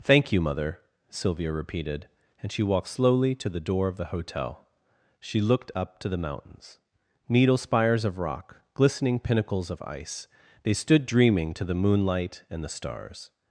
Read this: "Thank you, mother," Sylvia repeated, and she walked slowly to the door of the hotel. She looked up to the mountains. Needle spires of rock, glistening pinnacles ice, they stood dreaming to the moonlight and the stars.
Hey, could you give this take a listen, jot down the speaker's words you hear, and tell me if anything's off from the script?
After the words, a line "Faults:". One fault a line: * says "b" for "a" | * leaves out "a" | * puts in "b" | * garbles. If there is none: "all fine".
"Thank you, mother," Sylvia repeated, and she walked slowly to the door of the hotel. She looked up to the mountains. Needle spires of rock, glistening pinnacles of ice, they stood dreaming to the moonlight and the stars.
Faults:
* puts in "of"